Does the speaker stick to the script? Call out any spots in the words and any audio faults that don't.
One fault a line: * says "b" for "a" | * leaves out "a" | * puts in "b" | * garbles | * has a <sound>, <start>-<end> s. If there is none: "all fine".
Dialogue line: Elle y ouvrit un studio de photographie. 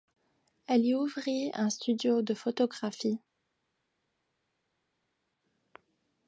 all fine